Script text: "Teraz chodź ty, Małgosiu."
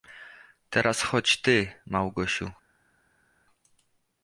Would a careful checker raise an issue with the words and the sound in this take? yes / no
no